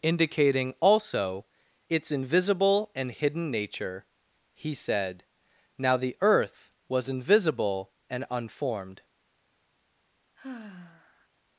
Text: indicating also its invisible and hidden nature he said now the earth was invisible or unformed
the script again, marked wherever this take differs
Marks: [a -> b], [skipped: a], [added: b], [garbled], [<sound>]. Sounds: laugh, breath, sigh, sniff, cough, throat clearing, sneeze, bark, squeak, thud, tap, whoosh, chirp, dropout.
indicating also its invisible and hidden nature he said now the earth was invisible [or -> and] unformed [sigh]